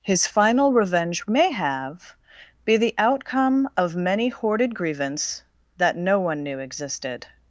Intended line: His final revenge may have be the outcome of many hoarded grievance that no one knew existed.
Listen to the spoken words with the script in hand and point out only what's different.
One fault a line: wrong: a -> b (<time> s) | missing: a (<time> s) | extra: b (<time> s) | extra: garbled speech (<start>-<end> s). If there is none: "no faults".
no faults